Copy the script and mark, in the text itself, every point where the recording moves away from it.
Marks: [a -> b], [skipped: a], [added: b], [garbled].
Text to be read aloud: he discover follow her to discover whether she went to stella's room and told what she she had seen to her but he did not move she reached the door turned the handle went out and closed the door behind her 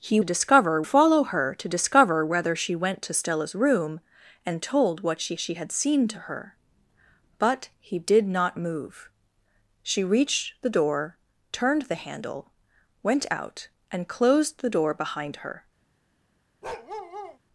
he discover follow her to discover whether she went to stella's room and told what she she had seen to her but he did not move she reached the door turned the handle went out and closed the door behind her